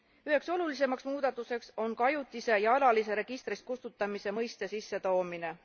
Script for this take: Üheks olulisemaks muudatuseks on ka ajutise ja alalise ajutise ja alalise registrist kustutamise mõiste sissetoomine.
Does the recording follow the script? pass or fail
fail